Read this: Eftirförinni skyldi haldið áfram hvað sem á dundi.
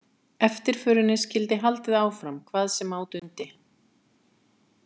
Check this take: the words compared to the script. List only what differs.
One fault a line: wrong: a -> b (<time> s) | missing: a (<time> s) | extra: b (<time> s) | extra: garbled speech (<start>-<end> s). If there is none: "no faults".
no faults